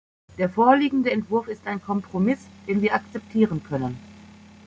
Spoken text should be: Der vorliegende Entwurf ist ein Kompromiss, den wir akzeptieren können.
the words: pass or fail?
pass